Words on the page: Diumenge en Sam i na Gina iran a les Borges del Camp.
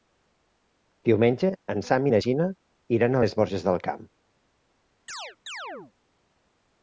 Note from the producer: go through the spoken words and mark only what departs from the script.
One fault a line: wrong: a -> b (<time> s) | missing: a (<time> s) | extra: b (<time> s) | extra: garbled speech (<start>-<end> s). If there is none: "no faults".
no faults